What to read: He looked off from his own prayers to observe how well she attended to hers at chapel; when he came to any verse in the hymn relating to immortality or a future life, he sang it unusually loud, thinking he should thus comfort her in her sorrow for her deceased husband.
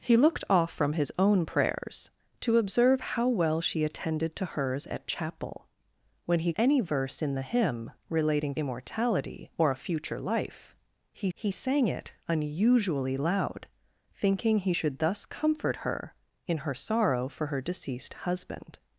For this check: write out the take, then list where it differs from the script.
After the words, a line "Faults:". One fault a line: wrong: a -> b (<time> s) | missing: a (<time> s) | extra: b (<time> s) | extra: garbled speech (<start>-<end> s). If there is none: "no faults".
He looked off from his own prayers to observe how well she attended to hers at chapel; when he any verse in the hymn relating immortality or a future life, he he sang it unusually loud, thinking he should thus comfort her in her sorrow for her deceased husband.
Faults:
missing: came to (6.5 s)
missing: to (8.6 s)
extra: he (11.3 s)